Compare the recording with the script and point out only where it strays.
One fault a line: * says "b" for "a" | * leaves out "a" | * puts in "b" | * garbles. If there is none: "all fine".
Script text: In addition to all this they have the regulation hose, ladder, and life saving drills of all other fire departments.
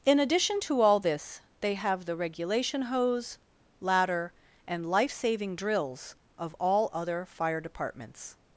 all fine